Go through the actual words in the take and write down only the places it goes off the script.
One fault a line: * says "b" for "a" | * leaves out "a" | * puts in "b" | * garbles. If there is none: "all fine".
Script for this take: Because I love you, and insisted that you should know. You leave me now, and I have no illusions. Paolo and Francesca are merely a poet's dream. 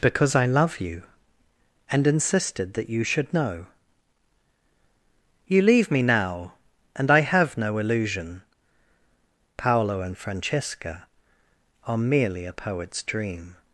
* says "illusion" for "illusions"